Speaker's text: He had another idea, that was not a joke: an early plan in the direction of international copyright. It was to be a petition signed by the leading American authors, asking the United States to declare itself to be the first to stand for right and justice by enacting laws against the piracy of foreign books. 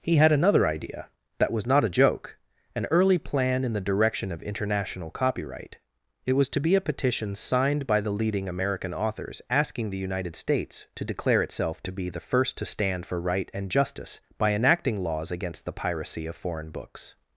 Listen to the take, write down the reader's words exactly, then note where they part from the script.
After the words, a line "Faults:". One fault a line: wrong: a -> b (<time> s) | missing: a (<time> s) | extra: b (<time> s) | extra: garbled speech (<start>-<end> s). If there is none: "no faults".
He had another idea, that was not a joke: an early plan in the direction of international copyright. It was to be a petition signed by the leading American authors, asking the United States to declare itself to be the first to stand for right and justice by enacting laws against the piracy of foreign books.
Faults:
no faults